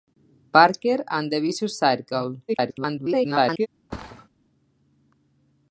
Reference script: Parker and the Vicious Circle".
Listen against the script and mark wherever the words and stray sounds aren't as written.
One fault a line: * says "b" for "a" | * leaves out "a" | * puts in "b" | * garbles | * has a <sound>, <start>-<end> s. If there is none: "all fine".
* garbles
* has a thud, 3.9-4.3 s